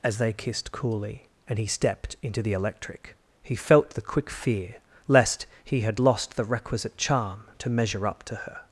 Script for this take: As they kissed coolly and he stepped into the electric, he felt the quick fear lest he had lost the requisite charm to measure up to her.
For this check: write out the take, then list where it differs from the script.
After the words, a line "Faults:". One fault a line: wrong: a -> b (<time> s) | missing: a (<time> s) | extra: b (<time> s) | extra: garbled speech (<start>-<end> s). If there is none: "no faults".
As they kissed coolly and he stepped into the electric, he felt the quick fear lest he had lost the requisite charm to measure up to her.
Faults:
no faults